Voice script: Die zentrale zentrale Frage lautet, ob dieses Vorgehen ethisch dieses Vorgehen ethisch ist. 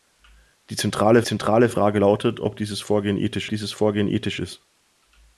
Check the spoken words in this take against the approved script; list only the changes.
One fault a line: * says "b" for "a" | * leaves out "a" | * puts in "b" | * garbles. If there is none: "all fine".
all fine